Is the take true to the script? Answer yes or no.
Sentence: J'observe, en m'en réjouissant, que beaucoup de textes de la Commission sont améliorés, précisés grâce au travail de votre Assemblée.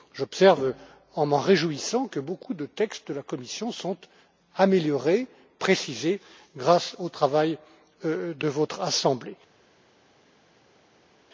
yes